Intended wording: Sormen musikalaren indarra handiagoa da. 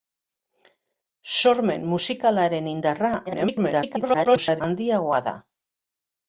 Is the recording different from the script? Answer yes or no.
yes